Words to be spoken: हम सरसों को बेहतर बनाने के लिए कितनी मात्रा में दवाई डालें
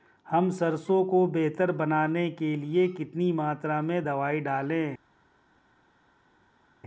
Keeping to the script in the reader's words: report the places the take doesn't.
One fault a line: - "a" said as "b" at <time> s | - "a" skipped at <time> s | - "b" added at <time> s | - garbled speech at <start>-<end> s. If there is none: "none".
none